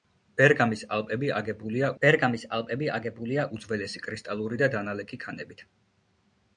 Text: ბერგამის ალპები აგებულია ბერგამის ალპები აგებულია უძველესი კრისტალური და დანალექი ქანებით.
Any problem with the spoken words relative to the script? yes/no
no